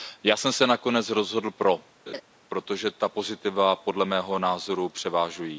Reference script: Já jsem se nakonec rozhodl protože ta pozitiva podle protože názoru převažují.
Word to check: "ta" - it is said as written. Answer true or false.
true